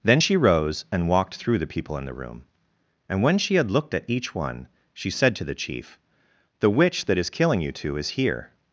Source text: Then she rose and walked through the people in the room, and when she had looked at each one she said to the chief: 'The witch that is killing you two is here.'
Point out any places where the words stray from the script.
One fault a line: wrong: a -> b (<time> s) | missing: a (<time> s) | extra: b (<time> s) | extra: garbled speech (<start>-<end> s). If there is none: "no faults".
no faults